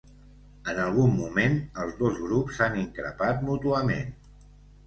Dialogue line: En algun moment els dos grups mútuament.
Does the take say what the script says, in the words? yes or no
no